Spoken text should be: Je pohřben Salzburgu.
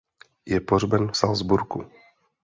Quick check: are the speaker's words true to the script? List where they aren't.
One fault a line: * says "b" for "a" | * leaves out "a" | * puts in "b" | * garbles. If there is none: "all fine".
all fine